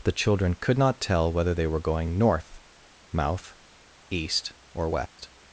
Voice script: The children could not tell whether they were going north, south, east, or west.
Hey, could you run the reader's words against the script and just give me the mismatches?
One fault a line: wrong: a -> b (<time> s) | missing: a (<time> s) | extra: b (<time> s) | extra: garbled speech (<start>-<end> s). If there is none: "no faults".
wrong: south -> mouth (3.1 s)